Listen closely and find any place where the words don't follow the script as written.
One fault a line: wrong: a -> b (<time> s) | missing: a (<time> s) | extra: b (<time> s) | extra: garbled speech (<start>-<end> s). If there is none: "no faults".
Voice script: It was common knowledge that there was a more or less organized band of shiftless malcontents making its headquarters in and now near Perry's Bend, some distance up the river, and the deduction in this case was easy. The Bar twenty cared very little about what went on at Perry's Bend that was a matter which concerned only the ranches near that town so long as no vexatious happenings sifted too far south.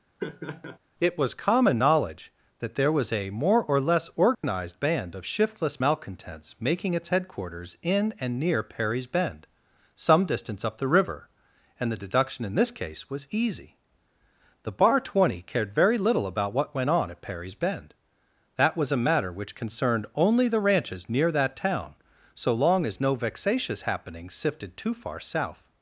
missing: now (8.4 s)